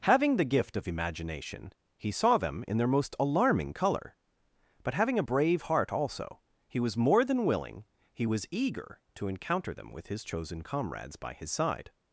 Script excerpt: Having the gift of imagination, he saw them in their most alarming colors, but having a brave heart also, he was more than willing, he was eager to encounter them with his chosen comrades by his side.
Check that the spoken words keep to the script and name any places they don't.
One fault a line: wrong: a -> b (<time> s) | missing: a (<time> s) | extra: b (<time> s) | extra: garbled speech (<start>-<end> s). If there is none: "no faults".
wrong: colors -> color (3.7 s)